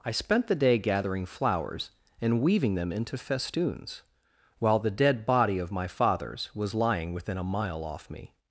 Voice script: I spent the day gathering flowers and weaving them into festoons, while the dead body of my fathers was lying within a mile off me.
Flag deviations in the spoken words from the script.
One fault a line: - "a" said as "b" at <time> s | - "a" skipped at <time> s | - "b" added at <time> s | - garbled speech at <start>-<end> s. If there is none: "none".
none